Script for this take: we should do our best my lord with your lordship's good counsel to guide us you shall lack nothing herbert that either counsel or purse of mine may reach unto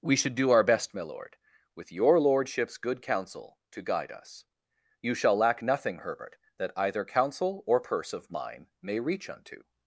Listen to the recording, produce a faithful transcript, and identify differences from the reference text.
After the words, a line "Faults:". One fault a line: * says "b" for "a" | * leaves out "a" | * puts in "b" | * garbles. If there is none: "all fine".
we should do our best my lord with your lordship's good counsel to guide us you shall lack nothing herbert that either counsel or purse of mine may reach unto
Faults:
all fine